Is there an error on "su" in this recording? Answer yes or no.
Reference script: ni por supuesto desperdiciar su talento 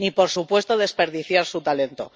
no